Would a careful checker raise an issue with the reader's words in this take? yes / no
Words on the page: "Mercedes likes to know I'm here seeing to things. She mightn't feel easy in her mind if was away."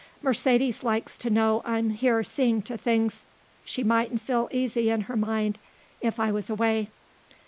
yes